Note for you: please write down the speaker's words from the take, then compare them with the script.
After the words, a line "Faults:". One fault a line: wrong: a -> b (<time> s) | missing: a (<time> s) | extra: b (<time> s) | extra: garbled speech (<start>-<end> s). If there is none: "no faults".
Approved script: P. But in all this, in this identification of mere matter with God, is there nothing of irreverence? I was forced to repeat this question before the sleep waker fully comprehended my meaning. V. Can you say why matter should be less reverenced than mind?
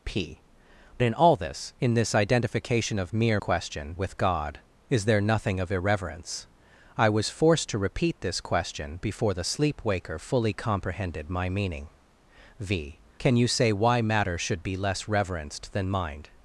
P. In all this, in this identification of mere question with God, is there nothing of irreverence? I was forced to repeat this question before the sleep waker fully comprehended my meaning. V. Can you say why matter should be less reverenced than mind?
Faults:
missing: But (0.4 s)
wrong: matter -> question (3.4 s)